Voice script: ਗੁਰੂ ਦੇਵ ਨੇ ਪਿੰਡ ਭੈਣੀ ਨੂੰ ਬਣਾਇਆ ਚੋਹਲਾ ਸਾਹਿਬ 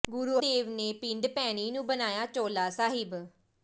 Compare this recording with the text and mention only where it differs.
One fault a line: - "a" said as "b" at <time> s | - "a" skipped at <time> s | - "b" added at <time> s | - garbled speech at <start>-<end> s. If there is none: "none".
none